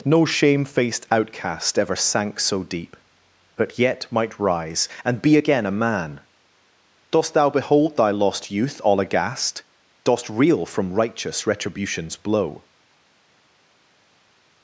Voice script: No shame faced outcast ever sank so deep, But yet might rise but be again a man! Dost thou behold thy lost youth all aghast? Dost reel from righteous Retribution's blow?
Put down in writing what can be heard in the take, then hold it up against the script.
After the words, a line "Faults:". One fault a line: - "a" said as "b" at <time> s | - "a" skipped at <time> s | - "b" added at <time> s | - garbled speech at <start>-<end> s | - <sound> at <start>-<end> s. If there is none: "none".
No shame faced outcast ever sank so deep, But yet might rise and be again a man! Dost thou behold thy lost youth all aghast? Dost reel from righteous Retribution's blow?
Faults:
- "but" said as "and" at 5.0 s